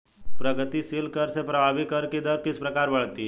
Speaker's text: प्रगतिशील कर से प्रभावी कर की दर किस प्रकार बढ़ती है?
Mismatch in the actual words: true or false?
false